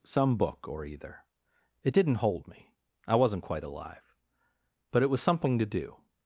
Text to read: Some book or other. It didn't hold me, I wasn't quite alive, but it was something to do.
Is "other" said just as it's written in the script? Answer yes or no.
no